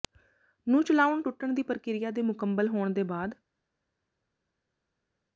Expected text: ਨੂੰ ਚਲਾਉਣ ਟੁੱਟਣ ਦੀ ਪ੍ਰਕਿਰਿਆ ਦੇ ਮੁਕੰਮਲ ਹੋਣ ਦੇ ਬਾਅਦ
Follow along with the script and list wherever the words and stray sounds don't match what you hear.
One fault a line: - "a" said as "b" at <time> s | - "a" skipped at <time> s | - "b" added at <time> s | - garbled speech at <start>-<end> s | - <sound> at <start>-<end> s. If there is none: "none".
none